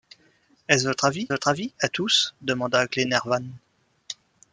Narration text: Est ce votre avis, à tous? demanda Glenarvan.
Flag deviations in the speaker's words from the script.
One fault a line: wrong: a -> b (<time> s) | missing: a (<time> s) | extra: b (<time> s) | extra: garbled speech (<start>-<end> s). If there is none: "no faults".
extra: votre avis (1.3 s)